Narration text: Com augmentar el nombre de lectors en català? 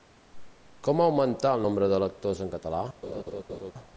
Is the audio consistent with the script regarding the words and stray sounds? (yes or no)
no